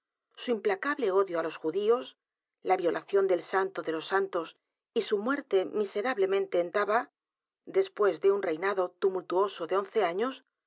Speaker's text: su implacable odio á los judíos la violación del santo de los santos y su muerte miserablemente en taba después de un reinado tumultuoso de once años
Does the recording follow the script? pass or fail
pass